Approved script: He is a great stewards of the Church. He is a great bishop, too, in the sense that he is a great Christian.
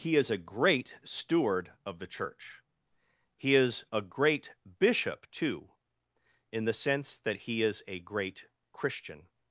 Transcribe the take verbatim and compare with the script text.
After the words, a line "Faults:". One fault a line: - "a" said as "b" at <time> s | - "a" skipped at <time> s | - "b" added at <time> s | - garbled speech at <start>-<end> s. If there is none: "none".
He is a great steward of the Church. He is a great bishop, too, in the sense that he is a great Christian.
Faults:
- "stewards" said as "steward" at 1.0 s